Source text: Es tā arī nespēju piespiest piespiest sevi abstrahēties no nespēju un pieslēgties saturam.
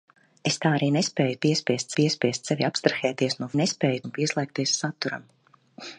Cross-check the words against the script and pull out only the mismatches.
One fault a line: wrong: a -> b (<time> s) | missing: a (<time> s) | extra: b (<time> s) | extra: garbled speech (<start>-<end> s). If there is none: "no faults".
no faults